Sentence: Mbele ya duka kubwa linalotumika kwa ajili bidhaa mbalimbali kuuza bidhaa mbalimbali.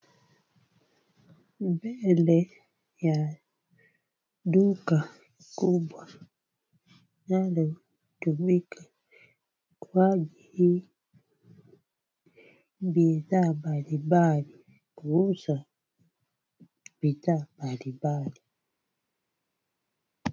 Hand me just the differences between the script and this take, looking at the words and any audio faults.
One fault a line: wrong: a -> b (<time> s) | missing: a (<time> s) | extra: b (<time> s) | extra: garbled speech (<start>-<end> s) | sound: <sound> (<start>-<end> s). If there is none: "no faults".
no faults